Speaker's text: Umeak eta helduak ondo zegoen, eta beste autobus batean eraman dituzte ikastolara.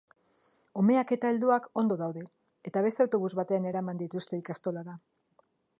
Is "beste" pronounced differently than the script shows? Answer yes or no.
no